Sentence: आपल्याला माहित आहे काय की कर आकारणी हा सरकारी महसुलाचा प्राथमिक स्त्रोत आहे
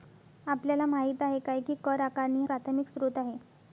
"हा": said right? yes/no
no